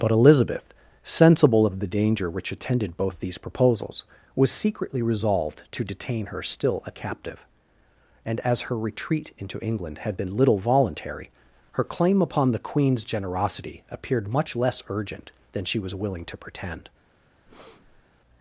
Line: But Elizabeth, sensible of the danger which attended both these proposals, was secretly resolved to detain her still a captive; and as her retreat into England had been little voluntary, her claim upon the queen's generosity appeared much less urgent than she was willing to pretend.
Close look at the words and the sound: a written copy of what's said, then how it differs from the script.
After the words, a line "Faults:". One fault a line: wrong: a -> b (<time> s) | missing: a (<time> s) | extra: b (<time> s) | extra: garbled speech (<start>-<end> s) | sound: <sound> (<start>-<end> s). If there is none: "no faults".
But Elizabeth, sensible of the danger which attended both these proposals, was secretly resolved to detain her still a captive; and as her retreat into England had been little voluntary, her claim upon the queen's generosity appeared much less urgent than she was willing to pretend.
Faults:
sound: breath (17.5-18.1 s)